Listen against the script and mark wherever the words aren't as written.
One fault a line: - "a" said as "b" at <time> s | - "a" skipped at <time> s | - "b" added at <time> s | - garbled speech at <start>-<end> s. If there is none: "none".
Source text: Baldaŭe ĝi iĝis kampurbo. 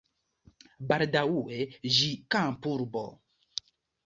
- "iĝis" skipped at 2.1 s